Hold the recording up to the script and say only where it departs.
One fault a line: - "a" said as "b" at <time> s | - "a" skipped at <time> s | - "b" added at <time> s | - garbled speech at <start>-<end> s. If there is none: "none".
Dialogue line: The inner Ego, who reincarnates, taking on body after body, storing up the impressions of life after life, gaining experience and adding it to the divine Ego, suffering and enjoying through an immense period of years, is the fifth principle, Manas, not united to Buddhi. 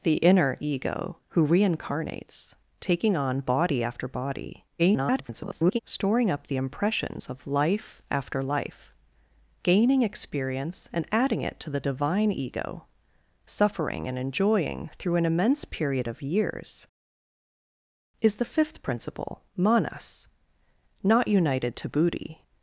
- garbled speech at 4.8-5.8 s